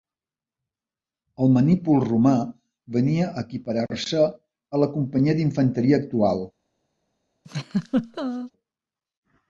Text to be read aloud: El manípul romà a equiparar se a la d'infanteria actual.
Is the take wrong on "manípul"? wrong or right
right